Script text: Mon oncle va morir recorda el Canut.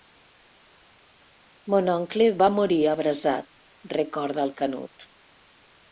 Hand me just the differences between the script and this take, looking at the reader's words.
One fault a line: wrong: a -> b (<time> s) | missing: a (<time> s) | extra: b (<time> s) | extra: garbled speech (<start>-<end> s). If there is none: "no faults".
extra: abrasat (2.9 s)